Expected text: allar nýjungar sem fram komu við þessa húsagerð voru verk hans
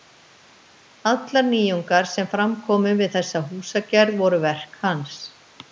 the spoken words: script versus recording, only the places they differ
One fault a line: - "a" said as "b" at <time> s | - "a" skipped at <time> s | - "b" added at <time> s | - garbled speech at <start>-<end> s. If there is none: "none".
none